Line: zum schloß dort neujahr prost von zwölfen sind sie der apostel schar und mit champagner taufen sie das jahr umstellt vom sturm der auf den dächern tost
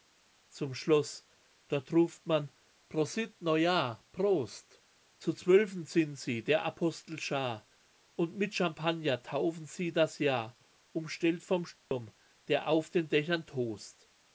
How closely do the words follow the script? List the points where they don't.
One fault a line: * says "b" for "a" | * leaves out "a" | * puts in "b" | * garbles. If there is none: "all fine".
* puts in "ruft man prosit"
* says "zu" for "von"